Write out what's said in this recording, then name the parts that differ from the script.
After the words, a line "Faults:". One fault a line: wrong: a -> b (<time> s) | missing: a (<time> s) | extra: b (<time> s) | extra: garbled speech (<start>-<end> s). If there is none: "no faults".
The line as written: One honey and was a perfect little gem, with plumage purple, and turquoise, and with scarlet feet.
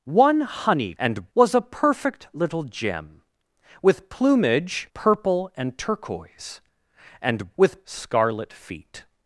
One honey and was a perfect little gem, with plumage purple, and turquoise, and with scarlet feet.
Faults:
no faults